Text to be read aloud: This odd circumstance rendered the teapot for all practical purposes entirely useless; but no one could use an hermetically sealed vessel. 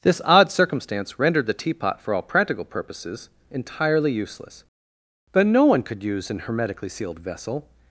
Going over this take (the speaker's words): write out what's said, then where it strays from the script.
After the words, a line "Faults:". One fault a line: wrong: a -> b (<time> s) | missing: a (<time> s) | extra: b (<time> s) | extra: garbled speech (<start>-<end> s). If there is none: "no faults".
This odd circumstance rendered the teapot for all practical purposes entirely useless; but no one could use an hermetically sealed vessel.
Faults:
no faults